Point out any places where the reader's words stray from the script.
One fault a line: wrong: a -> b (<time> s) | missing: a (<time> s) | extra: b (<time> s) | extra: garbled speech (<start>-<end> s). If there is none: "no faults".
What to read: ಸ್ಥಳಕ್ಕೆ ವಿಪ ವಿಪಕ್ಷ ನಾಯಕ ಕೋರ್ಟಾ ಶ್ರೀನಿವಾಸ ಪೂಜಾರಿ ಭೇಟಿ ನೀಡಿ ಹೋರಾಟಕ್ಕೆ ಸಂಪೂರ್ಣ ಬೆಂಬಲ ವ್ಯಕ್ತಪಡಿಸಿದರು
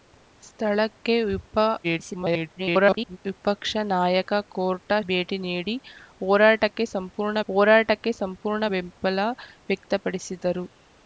extra: garbled speech (1.8-3.2 s)
wrong: ಶ್ರೀನಿವಾಸ ಪೂಜಾರಿ ಭೇಟಿ ನೀಡಿ -> ಭೇಟಿ ನೀಡಿ ಹೋರಾಟಕ್ಕೆ ಸಂಪೂರ್ಣ (5.1 s)